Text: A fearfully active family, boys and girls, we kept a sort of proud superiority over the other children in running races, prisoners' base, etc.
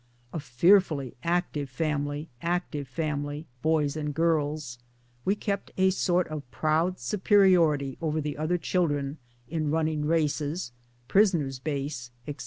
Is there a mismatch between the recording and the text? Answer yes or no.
yes